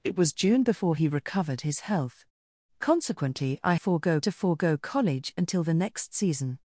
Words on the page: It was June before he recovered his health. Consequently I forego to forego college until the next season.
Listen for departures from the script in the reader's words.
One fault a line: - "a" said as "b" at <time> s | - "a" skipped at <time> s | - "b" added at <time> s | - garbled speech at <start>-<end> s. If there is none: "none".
none